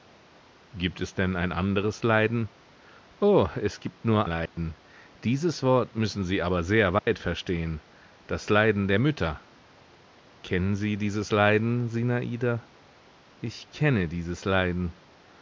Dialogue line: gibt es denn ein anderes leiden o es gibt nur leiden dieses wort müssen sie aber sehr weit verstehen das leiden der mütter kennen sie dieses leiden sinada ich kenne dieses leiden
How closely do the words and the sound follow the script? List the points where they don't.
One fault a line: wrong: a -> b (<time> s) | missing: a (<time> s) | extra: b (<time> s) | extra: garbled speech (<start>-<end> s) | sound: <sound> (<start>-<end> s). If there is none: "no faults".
sound: dropout (4.5-4.6 s)
sound: dropout (7.0-7.1 s)